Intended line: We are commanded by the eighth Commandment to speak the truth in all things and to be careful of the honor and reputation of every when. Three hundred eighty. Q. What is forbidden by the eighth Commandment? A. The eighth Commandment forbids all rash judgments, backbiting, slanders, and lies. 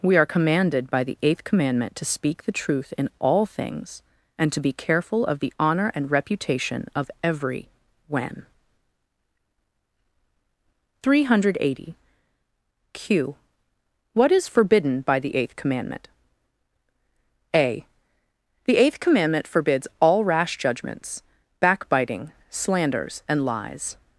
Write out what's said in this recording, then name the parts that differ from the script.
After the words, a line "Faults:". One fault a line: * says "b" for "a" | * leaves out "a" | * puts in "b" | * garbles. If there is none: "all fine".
We are commanded by the eighth Commandment to speak the truth in all things and to be careful of the honor and reputation of every when. Three hundred eighty. Q. What is forbidden by the eighth Commandment? A. The eighth Commandment forbids all rash judgments, backbiting, slanders, and lies.
Faults:
all fine